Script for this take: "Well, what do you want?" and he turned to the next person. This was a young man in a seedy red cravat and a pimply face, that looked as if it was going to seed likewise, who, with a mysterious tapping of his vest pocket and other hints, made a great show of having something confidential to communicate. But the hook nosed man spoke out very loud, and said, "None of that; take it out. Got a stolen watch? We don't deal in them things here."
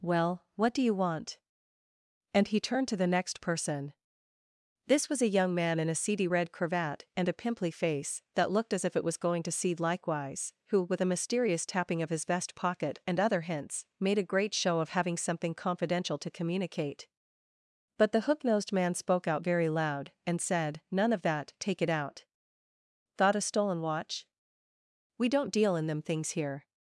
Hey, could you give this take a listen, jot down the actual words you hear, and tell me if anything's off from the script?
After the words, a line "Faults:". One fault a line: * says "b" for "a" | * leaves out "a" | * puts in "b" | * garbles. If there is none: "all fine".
"Well, what do you want?" and he turned to the next person. This was a young man in a seedy red cravat and a pimply face, that looked as if it was going to seed likewise, who, with a mysterious tapping of his vest pocket and other hints, made a great show of having something confidential to communicate. But the hook nosed man spoke out very loud, and said, "None of that; take it out. Thought a stolen watch? We don't deal in them things here."
Faults:
* says "Thought" for "Got"